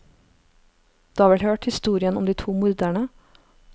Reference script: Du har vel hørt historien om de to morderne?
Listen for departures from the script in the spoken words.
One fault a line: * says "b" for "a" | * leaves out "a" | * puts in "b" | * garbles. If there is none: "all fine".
all fine